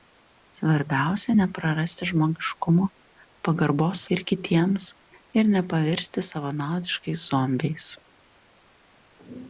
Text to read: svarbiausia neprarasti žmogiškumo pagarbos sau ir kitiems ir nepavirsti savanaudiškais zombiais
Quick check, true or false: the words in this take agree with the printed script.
false